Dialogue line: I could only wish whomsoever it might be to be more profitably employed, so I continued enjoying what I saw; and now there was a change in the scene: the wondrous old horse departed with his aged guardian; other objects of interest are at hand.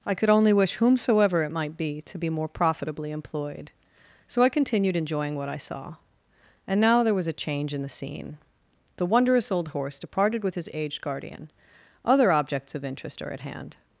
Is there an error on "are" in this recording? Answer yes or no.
no